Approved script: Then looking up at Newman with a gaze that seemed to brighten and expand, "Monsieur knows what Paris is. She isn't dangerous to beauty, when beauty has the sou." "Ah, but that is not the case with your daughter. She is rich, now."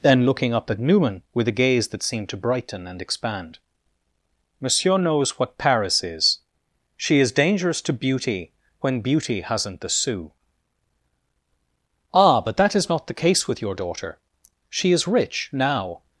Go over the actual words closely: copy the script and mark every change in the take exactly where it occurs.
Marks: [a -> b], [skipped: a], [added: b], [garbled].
Then looking up at Newman with a gaze that seemed to brighten and expand, "Monsieur knows what Paris is. She [isn't -> is] dangerous to beauty, when beauty [has -> hasn't] the sou." "Ah, but that is not the case with your daughter. She is rich, now."